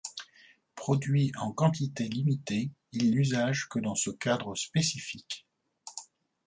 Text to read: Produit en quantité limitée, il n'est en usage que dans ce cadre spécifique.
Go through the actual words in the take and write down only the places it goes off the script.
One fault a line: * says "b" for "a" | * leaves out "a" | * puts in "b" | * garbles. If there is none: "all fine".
* leaves out "n'est en"